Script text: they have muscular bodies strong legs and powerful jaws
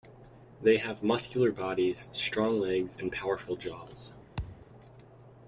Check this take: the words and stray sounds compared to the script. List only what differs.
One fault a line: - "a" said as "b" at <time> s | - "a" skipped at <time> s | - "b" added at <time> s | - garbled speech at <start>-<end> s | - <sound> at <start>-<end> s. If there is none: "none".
- thud at 4.4-4.7 s